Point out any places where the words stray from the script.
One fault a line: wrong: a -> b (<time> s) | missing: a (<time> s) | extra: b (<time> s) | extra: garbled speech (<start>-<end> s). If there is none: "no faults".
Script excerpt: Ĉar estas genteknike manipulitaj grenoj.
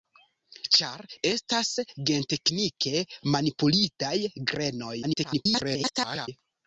extra: garbled speech (5.0-6.3 s)